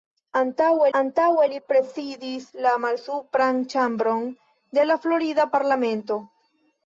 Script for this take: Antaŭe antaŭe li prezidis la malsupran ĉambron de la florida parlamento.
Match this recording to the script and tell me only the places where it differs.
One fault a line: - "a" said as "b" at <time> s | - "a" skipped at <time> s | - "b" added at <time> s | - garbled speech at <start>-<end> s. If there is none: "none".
none